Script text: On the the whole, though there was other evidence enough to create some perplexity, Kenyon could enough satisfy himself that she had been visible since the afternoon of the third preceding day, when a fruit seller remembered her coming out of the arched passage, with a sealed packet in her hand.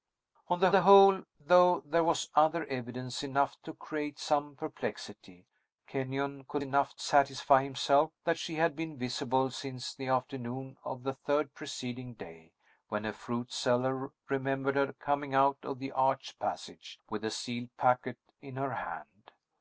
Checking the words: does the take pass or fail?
pass